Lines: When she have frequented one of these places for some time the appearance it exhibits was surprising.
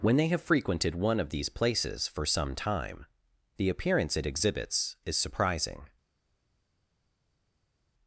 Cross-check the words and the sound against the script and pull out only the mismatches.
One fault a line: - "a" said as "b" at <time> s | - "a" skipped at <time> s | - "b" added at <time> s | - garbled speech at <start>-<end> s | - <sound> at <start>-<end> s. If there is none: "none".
- "she" said as "they" at 0.2 s
- "was" said as "is" at 5.0 s